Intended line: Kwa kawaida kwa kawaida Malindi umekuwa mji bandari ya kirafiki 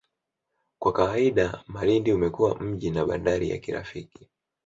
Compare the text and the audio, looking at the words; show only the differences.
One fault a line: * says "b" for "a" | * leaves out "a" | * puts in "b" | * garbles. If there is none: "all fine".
* leaves out "kwa kawaida"
* puts in "na"